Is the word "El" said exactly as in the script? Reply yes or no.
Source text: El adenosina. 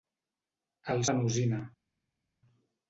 yes